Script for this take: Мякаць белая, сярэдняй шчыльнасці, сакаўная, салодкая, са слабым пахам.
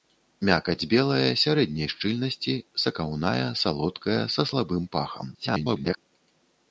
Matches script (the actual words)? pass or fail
fail